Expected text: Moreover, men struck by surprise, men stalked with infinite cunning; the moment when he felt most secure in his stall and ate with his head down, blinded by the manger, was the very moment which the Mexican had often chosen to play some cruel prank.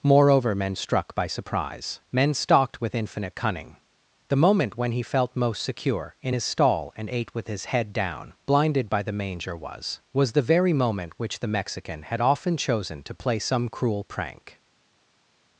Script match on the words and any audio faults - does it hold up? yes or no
no